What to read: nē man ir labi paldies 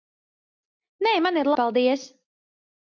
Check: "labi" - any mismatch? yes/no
yes